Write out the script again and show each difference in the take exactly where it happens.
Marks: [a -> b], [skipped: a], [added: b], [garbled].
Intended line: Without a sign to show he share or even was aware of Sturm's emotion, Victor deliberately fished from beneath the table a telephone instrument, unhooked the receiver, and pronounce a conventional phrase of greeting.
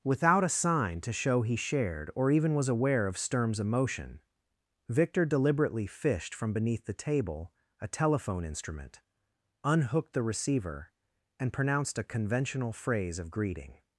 Without a sign to show he [share -> shared] or even was aware of Sturm's emotion, Victor deliberately fished from beneath the table a telephone instrument, unhooked the receiver, and [pronounce -> pronounced] a conventional phrase of greeting.